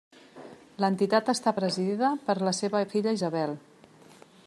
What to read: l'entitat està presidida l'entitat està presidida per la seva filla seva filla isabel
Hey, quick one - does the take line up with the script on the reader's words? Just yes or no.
no